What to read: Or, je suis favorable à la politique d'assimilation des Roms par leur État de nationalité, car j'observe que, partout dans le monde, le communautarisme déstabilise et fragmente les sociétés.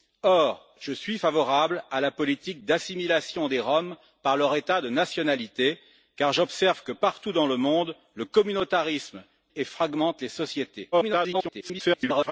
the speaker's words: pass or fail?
fail